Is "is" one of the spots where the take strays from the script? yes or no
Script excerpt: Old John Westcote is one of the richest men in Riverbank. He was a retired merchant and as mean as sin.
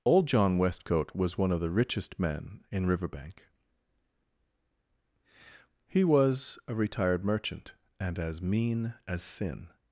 yes